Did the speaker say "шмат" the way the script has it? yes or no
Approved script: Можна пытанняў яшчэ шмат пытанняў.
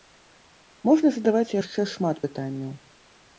yes